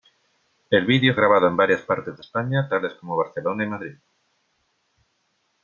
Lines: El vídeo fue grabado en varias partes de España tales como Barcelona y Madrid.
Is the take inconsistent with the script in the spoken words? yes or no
yes